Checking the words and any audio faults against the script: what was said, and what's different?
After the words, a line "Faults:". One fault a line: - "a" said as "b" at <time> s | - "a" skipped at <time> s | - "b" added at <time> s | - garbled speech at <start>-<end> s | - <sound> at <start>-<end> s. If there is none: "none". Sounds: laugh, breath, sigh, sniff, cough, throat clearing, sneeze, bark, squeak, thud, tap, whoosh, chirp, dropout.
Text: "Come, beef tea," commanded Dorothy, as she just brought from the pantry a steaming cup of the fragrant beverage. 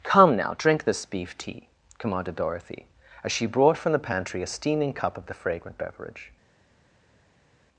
"Come, now, drink this beef tea," commanded Dorothy, as she brought from the pantry a steaming cup of the fragrant beverage.
Faults:
- "now drink this" added at 0.3 s
- "just" skipped at 3.5 s